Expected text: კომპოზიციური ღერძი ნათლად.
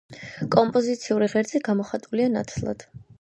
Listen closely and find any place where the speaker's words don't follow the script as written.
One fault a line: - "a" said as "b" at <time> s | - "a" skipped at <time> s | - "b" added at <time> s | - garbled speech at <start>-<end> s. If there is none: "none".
- "გამოხატულია" added at 1.7 s